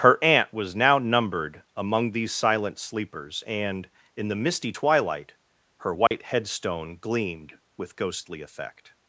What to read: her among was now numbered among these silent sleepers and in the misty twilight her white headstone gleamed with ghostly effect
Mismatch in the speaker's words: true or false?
true